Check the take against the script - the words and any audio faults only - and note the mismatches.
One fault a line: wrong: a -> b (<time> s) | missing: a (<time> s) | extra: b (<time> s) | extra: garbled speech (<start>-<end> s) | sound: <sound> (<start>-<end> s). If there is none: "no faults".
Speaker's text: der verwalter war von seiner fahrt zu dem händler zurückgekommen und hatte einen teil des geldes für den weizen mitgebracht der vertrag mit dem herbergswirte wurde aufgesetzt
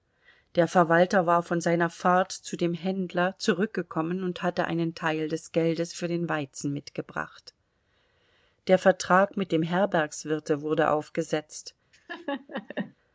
sound: laugh (11.9-12.9 s)